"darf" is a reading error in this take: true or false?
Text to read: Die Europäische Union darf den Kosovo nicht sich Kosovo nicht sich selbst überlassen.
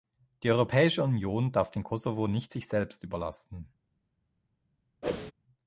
false